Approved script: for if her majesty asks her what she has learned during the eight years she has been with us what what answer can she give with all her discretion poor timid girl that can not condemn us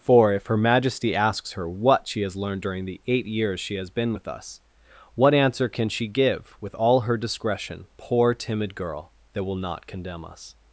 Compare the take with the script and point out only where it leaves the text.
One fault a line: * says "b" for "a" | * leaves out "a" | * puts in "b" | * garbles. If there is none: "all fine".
* leaves out "what"
* says "will" for "can"